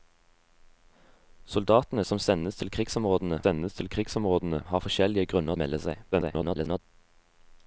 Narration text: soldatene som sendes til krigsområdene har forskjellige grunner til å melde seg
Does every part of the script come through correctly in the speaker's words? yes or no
no